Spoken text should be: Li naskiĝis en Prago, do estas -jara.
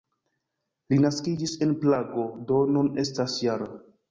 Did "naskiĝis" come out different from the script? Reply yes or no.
no